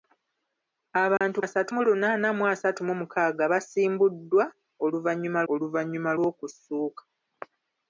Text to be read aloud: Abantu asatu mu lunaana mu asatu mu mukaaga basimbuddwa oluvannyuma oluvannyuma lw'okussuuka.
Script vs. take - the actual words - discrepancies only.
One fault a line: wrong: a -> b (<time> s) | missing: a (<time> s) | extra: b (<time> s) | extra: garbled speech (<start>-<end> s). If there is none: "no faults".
no faults